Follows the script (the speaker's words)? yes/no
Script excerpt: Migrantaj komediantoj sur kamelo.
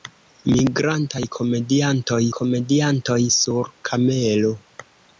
no